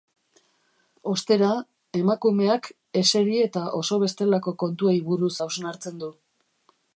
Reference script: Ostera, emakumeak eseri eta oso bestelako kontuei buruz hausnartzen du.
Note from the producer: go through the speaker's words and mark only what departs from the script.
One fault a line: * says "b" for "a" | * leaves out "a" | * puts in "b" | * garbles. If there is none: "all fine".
all fine